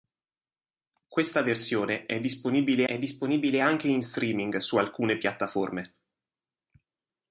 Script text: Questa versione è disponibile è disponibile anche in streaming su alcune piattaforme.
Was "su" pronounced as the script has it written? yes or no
yes